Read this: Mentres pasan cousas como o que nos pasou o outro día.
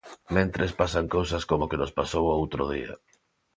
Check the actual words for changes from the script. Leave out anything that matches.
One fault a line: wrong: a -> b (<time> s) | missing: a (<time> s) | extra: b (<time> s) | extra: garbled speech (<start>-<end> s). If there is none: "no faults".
no faults